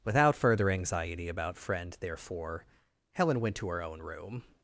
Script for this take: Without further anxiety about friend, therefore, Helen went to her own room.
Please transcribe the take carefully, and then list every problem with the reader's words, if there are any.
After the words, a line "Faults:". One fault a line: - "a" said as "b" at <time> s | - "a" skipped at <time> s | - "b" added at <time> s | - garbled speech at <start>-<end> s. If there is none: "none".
Without further anxiety about friend, therefore, Helen went to her own room.
Faults:
none